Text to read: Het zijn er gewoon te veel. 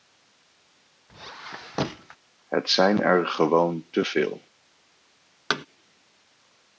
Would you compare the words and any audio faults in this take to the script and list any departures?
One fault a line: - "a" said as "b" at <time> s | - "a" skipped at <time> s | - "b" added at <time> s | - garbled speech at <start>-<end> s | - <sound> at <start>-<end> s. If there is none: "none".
- squeak at 1.1-2.2 s
- thud at 5.5-5.7 s